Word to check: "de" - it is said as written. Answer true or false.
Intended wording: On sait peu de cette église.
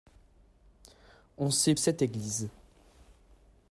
false